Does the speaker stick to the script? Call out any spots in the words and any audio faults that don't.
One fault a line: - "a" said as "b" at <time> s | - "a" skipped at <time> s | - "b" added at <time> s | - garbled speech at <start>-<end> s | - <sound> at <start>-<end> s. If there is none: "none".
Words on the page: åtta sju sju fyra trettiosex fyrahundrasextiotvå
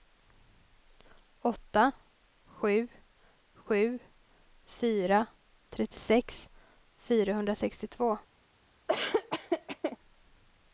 - laugh at 8.9-10.0 s